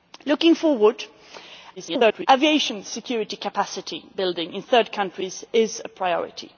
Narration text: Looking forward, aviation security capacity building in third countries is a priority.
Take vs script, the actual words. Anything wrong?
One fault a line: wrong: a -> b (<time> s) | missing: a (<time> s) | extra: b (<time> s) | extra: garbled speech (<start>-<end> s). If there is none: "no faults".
extra: garbled speech (1.8-2.3 s)